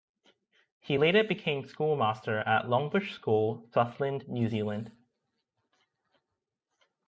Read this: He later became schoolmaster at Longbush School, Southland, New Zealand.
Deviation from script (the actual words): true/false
false